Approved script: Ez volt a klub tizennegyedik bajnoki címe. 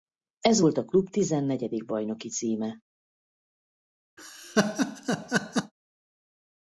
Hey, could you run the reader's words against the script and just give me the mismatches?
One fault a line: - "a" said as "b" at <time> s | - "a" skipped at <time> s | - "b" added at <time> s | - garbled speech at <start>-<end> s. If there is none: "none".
none